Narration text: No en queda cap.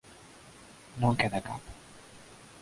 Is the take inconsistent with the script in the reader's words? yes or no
no